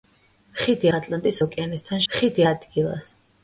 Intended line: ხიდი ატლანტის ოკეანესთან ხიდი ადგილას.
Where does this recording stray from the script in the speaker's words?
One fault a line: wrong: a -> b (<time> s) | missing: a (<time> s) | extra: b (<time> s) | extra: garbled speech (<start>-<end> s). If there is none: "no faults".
no faults